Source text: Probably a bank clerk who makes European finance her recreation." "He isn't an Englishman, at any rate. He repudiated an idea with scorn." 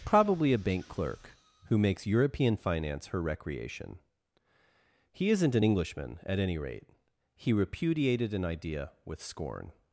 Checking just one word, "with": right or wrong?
right